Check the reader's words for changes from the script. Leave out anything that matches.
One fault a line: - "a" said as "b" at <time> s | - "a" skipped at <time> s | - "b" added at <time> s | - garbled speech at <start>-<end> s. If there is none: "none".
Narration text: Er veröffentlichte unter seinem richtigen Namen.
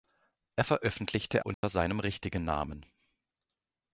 none